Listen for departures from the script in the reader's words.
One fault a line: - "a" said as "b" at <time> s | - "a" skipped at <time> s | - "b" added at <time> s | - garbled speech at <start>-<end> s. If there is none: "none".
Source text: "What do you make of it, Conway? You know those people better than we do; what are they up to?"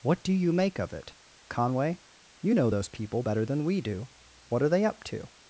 none